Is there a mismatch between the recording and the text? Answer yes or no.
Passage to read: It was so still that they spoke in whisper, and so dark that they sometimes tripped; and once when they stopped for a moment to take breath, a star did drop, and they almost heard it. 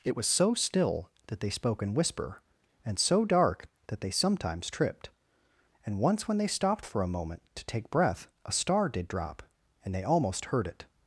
no